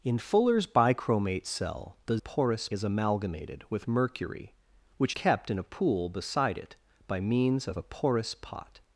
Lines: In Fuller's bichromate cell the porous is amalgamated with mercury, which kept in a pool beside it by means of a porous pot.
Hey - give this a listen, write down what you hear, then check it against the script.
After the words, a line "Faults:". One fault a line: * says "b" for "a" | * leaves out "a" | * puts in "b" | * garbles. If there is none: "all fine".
In Fuller's bichromate cell the porous is amalgamated with mercury, which kept in a pool beside it by means of a porous pot.
Faults:
all fine